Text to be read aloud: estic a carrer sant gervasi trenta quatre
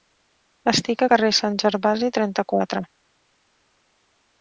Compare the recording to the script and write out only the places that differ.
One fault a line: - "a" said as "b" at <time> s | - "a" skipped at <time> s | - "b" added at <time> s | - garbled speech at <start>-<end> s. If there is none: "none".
none